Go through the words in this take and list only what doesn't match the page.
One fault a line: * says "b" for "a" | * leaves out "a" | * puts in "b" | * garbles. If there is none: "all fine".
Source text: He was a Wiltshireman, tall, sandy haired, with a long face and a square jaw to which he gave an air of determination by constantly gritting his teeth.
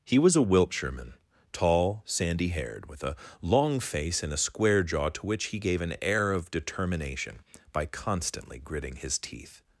all fine